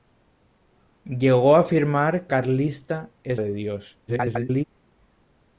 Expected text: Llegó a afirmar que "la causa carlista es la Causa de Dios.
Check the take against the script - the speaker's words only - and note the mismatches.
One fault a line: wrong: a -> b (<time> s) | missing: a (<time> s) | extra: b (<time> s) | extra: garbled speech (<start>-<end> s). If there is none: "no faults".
missing: que la causa (2.3 s)
missing: la Causa (3.4 s)
extra: garbled speech (4.1-4.6 s)